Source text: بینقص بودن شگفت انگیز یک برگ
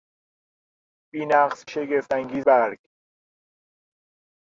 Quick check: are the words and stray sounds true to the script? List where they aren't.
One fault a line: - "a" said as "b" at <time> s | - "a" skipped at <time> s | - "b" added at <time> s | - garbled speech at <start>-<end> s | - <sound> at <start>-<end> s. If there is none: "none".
- "بودن" skipped at 1.6 s
- "یک" skipped at 2.5 s